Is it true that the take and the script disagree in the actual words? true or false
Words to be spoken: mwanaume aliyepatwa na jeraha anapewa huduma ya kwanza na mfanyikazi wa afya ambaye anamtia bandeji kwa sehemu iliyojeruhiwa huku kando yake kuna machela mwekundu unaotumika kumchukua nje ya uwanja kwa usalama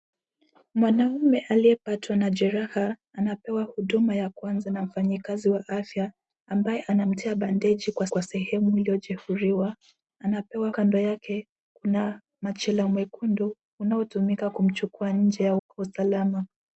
true